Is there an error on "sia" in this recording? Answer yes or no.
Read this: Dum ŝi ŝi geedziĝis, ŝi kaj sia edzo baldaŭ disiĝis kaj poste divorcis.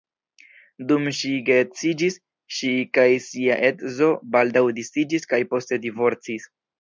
no